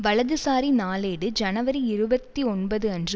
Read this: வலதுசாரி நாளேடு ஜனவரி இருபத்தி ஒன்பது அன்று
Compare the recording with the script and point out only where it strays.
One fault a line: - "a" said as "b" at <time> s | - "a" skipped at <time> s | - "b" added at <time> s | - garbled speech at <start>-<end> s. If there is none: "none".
none